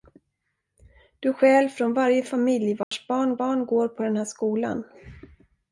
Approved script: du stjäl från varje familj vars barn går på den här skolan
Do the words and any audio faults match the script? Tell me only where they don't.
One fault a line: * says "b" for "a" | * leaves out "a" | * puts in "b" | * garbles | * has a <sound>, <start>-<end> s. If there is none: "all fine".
* has a dropout, 2.8-2.9 s
* puts in "barn"